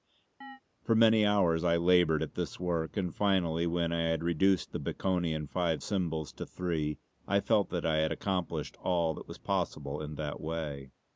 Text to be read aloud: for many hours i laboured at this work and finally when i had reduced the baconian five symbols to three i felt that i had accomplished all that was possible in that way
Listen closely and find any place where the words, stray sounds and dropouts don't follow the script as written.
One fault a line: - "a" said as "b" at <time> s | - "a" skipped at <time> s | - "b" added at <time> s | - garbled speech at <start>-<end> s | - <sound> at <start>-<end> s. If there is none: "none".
- chirp at 0.4-0.6 s